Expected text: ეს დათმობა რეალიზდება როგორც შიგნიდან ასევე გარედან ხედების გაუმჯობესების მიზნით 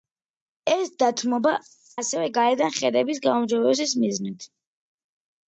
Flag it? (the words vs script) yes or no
yes